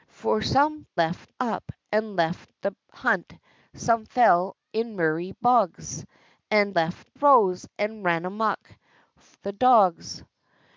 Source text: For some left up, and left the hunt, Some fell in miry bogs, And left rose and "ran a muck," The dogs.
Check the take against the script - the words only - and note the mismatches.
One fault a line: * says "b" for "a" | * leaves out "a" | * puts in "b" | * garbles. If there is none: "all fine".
all fine